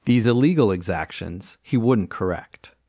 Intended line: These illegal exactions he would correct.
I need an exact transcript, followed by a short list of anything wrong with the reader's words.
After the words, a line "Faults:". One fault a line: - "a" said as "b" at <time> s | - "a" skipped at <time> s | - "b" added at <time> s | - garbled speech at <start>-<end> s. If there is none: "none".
These illegal exactions he wouldn't correct.
Faults:
- "would" said as "wouldn't" at 1.8 s